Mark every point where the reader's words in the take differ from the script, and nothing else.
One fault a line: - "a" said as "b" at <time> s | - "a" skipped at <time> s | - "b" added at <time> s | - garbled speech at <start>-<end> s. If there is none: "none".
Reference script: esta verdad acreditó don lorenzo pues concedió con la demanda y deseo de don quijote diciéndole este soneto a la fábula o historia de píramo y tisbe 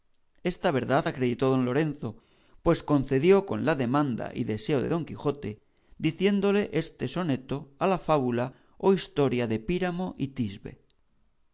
none